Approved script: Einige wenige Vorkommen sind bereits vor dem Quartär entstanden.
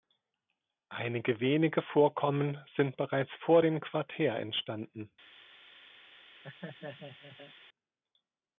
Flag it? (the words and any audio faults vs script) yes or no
yes